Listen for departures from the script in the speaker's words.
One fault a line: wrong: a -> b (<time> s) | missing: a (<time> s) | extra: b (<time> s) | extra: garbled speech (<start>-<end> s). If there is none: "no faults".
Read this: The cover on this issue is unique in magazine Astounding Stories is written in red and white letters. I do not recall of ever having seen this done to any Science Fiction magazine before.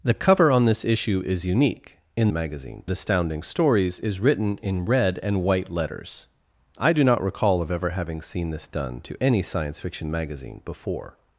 no faults